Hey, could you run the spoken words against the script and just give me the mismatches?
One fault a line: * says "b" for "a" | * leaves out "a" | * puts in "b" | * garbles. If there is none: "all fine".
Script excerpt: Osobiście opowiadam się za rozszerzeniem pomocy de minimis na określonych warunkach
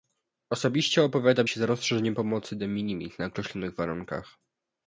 all fine